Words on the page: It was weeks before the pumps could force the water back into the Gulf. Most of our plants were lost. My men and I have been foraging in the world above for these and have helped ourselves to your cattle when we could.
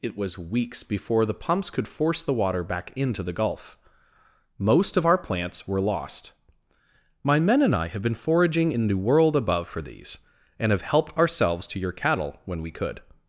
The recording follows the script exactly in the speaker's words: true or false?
true